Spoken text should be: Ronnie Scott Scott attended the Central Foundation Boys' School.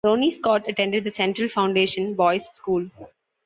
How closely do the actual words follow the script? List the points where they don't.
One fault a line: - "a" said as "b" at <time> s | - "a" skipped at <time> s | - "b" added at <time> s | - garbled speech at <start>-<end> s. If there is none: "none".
- "Scott" skipped at 0.7 s